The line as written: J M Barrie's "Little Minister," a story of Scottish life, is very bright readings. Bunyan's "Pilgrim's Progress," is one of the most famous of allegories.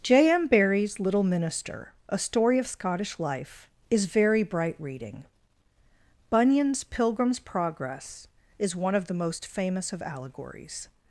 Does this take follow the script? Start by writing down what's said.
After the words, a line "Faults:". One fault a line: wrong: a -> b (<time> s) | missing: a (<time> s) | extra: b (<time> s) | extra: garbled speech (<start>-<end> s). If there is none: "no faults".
J M Barrie's "Little Minister," a story of Scottish life, is very bright reading. Bunyan's "Pilgrim's Progress," is one of the most famous of allegories.
Faults:
wrong: readings -> reading (4.8 s)